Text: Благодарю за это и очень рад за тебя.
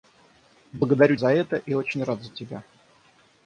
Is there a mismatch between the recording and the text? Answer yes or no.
no